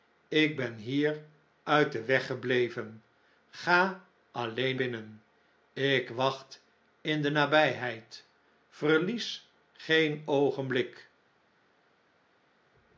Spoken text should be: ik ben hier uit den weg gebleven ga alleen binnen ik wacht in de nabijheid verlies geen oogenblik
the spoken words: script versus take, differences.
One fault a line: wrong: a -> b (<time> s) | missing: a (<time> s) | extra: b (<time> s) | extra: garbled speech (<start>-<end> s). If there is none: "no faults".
no faults